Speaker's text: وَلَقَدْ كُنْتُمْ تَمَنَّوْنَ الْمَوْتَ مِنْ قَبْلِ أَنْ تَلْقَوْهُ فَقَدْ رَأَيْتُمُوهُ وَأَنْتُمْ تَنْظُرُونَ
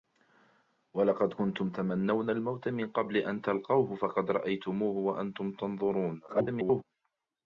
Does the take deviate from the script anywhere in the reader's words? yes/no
yes